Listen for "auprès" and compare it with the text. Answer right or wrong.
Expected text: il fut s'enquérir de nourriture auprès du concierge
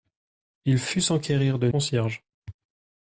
wrong